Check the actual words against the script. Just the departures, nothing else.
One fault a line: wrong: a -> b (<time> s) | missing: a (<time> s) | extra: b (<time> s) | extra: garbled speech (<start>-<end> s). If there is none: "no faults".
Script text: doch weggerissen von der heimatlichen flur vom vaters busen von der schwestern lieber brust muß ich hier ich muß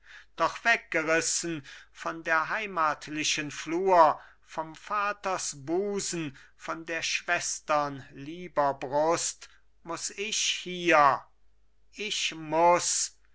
no faults